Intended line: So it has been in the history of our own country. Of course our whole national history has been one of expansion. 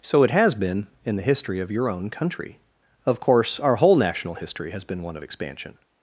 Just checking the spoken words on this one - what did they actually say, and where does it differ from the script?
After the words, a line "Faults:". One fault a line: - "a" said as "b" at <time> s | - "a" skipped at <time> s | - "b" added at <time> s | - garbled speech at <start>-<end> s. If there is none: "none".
So it has been in the history of your own country. Of course our whole national history has been one of expansion.
Faults:
- "our" said as "your" at 1.7 s